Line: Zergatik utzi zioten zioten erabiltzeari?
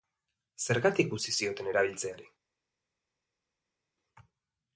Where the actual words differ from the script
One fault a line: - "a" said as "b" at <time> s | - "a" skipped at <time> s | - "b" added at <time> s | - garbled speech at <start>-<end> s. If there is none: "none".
- "zioten" skipped at 1.7 s